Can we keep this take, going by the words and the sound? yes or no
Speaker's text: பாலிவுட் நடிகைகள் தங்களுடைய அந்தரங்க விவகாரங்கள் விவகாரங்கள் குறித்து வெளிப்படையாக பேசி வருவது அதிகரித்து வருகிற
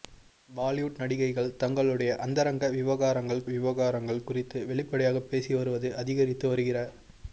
yes